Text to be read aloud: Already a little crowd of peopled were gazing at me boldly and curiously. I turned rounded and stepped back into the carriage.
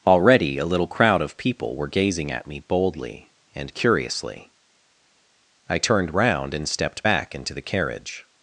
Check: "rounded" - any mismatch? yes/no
yes